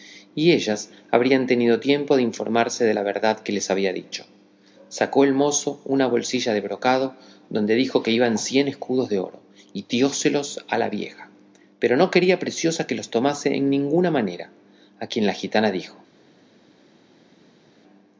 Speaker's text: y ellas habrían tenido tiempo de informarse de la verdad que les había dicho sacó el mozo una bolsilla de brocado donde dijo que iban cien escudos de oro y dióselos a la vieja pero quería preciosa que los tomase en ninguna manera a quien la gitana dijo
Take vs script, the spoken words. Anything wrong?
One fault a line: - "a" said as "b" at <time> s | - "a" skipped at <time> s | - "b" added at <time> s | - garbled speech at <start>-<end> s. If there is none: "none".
- "no" added at 12.0 s